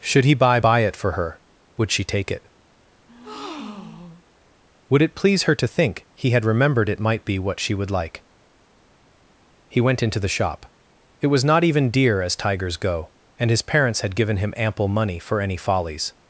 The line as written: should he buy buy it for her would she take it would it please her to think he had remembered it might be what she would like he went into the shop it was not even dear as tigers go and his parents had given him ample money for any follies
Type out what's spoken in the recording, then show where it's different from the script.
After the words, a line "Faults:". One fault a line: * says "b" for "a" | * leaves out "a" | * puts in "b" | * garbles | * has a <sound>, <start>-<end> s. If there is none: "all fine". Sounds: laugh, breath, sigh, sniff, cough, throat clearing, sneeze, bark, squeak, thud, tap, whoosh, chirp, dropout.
should he buy buy it for her would she take it would it please her to think he had remembered it might be what she would like he went into the shop it was not even dear as tigers go and his parents had given him ample money for any follies
Faults:
* has a breath, 3.1-4.2 s